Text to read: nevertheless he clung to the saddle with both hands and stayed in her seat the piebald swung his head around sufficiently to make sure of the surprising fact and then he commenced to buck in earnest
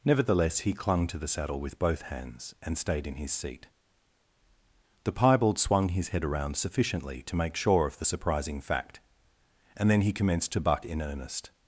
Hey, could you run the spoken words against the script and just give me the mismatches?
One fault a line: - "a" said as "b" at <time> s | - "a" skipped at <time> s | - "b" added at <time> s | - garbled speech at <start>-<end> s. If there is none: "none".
- "her" said as "his" at 3.1 s